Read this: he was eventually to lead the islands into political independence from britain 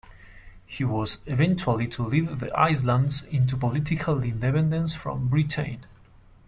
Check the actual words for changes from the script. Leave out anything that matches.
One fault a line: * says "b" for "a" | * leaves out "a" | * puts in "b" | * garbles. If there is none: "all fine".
all fine